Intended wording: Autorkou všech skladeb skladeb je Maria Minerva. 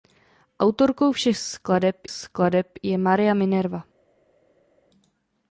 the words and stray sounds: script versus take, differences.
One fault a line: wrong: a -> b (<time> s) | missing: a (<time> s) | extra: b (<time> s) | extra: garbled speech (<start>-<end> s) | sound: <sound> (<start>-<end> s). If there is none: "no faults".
no faults